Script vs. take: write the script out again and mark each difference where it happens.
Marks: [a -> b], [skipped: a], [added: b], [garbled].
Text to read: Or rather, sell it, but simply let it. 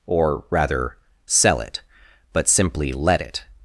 Or rather, sell it, but simply let it.